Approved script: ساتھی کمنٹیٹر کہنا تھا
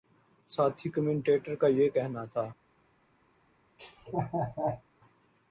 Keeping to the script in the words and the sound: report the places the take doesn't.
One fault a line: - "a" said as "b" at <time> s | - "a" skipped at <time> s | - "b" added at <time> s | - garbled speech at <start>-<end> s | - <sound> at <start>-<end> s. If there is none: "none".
- "کا یہ" added at 1.6 s
- laugh at 3.8-4.8 s